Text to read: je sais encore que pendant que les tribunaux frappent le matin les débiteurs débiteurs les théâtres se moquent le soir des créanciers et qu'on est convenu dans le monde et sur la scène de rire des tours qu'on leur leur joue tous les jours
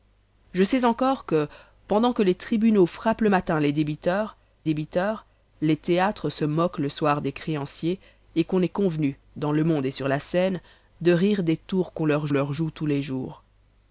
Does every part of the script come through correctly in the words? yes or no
yes